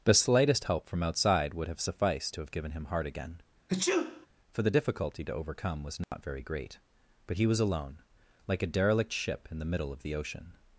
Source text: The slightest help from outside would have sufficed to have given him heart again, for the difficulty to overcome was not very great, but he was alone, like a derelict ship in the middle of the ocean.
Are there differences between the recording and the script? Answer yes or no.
no